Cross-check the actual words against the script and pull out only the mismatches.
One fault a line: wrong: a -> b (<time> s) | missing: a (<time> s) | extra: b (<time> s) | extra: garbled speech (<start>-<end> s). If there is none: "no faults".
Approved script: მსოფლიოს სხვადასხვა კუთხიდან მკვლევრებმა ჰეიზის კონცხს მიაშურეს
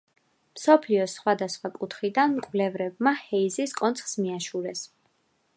no faults